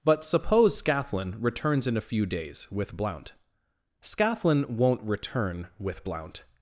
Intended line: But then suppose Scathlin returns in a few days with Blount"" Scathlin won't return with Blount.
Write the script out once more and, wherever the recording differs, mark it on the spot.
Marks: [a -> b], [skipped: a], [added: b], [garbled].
But [skipped: then] suppose Scathlin returns in a few days with Blount"" Scathlin won't return with Blount.